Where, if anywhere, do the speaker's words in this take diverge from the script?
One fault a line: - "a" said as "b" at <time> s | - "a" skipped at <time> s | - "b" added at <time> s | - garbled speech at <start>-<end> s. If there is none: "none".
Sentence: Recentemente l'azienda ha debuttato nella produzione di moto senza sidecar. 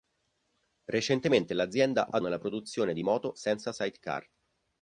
- "debuttato" skipped at 2.2 s